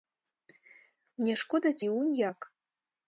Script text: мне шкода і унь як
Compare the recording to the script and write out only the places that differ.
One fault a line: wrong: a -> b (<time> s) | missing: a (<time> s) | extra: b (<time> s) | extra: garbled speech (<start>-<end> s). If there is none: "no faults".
no faults